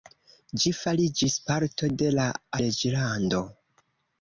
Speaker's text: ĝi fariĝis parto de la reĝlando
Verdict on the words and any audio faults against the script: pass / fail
pass